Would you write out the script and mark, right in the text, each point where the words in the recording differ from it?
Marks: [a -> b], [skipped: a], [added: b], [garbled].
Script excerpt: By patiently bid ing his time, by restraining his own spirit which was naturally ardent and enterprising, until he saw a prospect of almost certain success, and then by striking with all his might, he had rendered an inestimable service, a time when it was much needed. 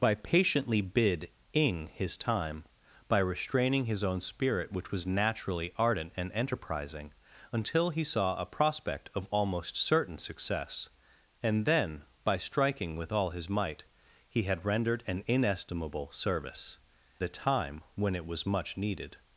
By patiently bid ing his time, by restraining his own spirit which was naturally ardent and enterprising, until he saw a prospect of almost certain success, and then by striking with all his might, he had rendered an inestimable service, a time when it was much needed.